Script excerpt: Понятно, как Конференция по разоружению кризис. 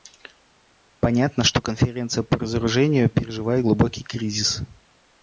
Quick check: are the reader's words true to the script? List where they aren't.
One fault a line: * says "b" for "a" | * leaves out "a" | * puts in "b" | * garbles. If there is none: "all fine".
* says "что" for "как"
* puts in "переживает глубокий"